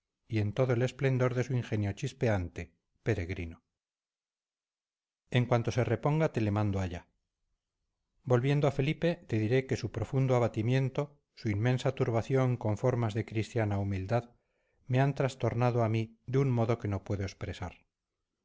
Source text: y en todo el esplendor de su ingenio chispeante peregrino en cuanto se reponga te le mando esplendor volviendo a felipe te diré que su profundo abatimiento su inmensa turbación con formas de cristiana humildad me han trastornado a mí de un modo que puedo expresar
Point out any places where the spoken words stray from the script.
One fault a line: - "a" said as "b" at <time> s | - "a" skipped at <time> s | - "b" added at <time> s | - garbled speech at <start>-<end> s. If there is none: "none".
- "esplendor" said as "allá" at 6.8 s
- "no" added at 16.9 s